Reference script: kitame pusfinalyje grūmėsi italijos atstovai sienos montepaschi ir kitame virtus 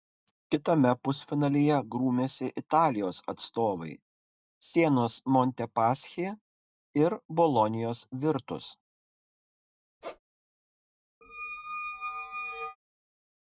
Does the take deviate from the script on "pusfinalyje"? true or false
false